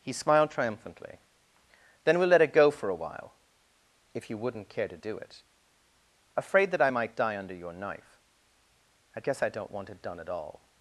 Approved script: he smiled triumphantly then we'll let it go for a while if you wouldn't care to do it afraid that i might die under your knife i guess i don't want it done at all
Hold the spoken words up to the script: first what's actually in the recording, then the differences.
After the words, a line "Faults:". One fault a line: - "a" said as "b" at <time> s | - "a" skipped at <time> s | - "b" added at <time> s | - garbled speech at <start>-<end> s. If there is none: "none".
he smiled triumphantly then we'll let it go for a while if you wouldn't care to do it afraid that i might die under your knife i guess i don't want it done at all
Faults:
none